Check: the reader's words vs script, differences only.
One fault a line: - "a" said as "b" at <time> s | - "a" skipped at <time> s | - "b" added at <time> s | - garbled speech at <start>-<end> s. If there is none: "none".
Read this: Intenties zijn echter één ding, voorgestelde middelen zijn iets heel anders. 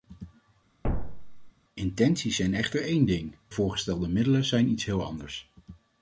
none